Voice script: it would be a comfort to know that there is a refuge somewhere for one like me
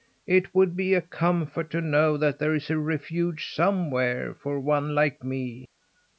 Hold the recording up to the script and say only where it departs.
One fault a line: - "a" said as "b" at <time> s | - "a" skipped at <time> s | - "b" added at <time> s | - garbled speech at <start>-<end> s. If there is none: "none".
none